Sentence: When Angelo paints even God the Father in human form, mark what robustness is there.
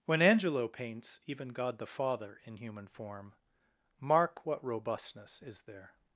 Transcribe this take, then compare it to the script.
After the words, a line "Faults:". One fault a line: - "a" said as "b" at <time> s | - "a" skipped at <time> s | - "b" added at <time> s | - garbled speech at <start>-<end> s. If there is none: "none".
When Angelo paints even God the Father in human form, mark what robustness is there.
Faults:
none